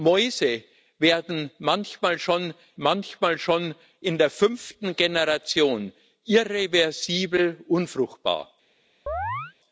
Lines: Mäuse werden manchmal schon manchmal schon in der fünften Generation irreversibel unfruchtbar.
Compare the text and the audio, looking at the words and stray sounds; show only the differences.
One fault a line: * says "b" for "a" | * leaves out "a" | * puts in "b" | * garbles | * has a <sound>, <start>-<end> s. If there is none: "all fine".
* has a chirp, 9.1-9.5 s